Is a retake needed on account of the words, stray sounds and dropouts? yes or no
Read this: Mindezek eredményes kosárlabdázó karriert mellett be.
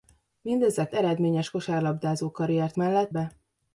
no